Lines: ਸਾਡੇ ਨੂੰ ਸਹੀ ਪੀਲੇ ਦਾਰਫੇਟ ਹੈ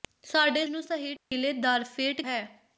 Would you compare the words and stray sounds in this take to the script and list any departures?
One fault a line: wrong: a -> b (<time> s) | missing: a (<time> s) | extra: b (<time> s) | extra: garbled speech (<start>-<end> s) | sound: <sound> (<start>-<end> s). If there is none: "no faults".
sound: dropout (1.2-1.3 s)